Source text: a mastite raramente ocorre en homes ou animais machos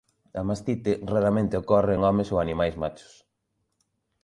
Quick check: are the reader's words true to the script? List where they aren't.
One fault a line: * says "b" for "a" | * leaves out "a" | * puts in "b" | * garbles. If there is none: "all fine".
all fine